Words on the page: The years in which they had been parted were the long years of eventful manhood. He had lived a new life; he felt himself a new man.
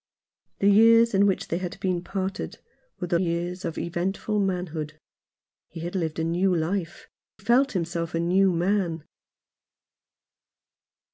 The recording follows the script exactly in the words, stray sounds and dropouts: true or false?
false